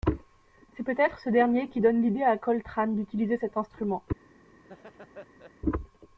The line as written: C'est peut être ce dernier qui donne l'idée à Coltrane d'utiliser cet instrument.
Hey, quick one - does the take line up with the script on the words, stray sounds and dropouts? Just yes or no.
no